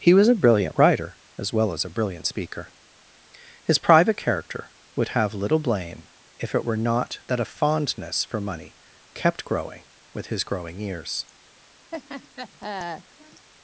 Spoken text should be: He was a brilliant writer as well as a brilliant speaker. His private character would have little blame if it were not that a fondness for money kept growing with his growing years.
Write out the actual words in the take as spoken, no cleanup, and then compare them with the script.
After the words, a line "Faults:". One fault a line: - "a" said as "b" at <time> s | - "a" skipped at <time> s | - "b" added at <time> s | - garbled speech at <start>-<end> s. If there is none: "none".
He was a brilliant writer as well as a brilliant speaker. His private character would have little blame if it were not that a fondness for money kept growing with his growing years.
Faults:
none